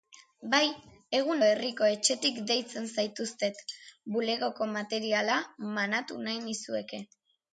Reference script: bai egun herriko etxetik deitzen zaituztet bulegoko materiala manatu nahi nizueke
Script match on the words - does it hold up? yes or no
yes